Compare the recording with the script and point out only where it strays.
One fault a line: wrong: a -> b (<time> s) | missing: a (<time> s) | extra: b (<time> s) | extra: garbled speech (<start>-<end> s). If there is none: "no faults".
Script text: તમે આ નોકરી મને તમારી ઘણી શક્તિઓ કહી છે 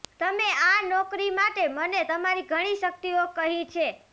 extra: માટે (1.4 s)